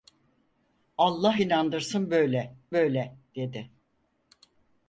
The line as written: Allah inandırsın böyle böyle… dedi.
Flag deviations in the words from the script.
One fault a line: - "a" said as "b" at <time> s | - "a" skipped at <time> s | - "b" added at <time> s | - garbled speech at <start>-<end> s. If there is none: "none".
none